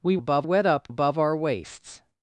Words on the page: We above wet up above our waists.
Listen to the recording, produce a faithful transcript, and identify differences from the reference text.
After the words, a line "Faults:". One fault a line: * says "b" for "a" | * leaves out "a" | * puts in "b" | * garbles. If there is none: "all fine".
We above wet up above our waists.
Faults:
all fine